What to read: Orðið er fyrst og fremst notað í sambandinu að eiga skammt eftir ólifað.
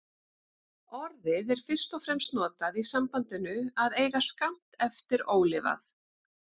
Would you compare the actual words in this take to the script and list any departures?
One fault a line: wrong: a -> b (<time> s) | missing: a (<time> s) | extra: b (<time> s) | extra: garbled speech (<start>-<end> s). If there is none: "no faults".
no faults